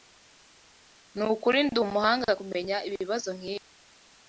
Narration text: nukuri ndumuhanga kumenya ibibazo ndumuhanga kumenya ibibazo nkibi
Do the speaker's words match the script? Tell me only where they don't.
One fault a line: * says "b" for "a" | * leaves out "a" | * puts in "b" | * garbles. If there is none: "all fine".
* leaves out "ndumuhanga kumenya ibibazo"